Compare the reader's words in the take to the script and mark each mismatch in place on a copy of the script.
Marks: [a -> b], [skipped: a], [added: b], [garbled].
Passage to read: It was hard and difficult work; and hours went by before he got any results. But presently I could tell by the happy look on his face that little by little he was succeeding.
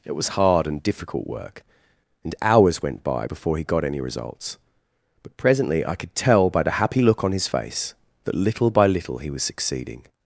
It was hard and difficult work; and hours went by before he got any results. But presently I could tell by the happy look on his face that little by little he was succeeding.